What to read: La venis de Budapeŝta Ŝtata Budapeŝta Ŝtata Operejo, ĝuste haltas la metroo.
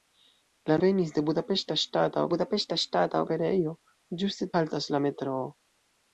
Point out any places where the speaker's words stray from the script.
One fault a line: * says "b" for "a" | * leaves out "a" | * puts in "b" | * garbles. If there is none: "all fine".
all fine